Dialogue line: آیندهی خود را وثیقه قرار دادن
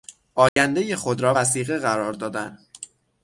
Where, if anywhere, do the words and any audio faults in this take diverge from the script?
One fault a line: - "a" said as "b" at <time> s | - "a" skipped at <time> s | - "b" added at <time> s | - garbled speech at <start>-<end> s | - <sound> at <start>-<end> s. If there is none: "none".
- dropout at 0.5-0.6 s